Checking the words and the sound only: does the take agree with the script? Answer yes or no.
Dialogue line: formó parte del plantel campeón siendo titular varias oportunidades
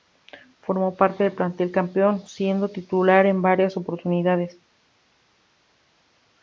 no